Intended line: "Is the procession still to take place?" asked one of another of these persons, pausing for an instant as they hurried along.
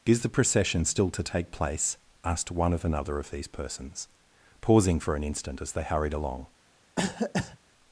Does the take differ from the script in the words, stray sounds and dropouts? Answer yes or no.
yes